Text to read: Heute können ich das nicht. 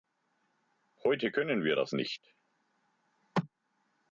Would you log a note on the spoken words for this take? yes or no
yes